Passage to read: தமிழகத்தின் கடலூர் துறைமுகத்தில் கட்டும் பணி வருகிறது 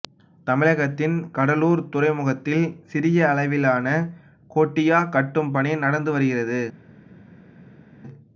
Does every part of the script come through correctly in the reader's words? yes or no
no